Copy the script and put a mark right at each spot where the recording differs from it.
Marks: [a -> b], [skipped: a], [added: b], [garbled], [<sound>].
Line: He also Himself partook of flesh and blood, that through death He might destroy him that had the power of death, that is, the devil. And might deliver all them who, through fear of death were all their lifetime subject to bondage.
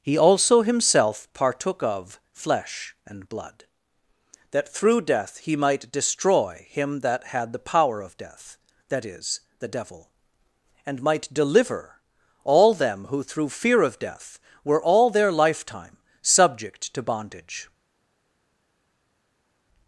He also Himself partook of flesh and blood, that through death He might destroy him that had the power of death, that is, the devil. And might deliver all them who, through fear of death were all their lifetime subject to bondage.